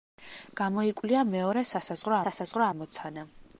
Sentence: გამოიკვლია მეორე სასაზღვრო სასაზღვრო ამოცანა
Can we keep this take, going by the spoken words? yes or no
yes